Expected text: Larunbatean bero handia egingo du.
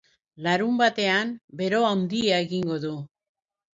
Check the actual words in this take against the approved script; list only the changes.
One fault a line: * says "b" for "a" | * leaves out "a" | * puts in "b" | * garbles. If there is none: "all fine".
all fine